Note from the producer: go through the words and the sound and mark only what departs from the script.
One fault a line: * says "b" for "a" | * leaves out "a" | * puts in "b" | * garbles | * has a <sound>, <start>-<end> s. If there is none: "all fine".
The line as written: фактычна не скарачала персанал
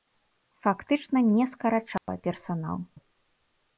* has a dropout, 2.0-2.1 s